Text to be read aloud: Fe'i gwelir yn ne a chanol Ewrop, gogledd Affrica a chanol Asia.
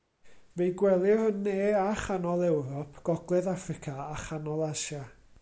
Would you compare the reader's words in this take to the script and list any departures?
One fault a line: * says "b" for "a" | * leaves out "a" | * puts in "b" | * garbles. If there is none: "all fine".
all fine